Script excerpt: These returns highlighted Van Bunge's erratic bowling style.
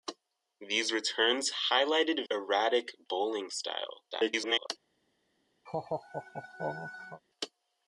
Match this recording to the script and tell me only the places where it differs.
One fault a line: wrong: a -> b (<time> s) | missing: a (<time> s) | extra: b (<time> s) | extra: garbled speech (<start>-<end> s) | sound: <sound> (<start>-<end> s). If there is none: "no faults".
missing: Van Bunge's (2.2 s)
extra: garbled speech (4.1-4.7 s)
sound: laugh (5.7-7.2 s)